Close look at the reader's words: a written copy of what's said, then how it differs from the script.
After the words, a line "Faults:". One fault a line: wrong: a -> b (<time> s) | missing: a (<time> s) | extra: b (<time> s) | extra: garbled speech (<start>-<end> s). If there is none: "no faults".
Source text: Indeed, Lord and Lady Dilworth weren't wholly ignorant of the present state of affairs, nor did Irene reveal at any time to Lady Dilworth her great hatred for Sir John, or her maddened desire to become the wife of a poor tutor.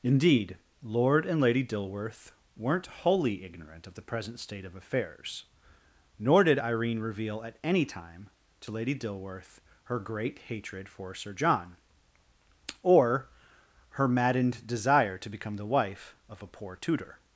Indeed, Lord and Lady Dilworth weren't wholly ignorant of the present state of affairs, nor did Irene reveal at any time to Lady Dilworth her great hatred for Sir John, or her maddened desire to become the wife of a poor tutor.
Faults:
no faults